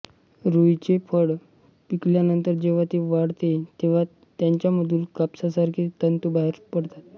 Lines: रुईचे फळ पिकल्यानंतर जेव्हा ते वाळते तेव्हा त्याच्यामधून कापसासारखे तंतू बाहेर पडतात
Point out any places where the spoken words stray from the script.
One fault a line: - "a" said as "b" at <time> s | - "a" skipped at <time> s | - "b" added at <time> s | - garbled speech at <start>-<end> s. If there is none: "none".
none